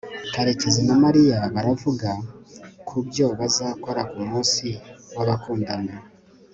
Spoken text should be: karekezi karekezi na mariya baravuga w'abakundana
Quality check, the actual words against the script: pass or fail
fail